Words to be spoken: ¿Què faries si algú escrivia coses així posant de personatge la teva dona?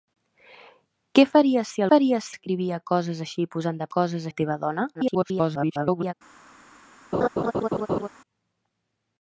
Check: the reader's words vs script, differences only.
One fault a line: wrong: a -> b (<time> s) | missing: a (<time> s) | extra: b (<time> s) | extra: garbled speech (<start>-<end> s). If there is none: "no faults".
wrong: algú -> faries (1.9 s)
wrong: personatge -> coses (4.0 s)
extra: garbled speech (4.9-6.1 s)